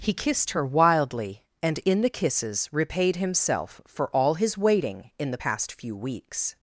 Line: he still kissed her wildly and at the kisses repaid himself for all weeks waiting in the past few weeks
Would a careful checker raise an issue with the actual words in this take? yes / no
yes